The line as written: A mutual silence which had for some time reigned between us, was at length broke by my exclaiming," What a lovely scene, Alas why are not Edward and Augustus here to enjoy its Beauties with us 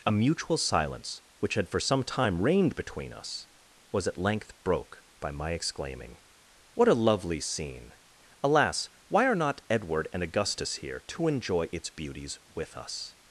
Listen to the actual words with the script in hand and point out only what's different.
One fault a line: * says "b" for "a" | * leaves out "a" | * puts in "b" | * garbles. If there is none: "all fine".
all fine